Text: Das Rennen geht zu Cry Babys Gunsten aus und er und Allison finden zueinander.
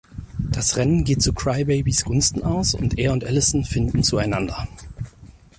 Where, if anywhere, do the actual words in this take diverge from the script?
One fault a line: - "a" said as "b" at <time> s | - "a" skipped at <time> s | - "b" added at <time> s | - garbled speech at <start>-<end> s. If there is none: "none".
none